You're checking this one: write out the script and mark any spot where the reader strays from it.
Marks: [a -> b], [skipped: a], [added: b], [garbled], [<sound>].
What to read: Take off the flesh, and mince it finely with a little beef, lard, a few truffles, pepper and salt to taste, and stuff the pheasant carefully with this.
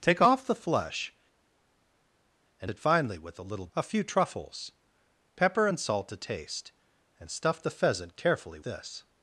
Take off the flesh, and [skipped: mince] it finely with a little [skipped: beef, lard,] a few truffles, pepper and salt to taste, and stuff the pheasant carefully [skipped: with] this.